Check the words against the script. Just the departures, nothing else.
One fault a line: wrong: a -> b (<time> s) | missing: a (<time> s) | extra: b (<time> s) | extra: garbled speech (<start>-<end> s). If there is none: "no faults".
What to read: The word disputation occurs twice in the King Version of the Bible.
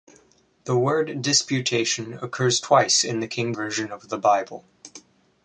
no faults